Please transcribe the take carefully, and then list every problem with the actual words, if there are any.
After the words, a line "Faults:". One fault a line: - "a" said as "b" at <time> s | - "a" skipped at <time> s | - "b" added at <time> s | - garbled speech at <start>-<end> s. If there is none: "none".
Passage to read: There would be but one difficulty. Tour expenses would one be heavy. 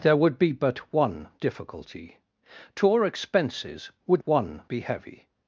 There would be but one difficulty. Tour expenses would one be heavy.
Faults:
none